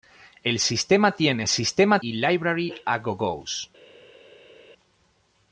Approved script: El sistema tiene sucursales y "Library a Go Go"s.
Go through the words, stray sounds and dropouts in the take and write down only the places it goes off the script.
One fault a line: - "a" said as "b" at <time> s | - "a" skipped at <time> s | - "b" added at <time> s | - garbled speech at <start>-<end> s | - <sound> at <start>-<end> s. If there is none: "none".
- "sucursales" said as "sistema" at 1.4 s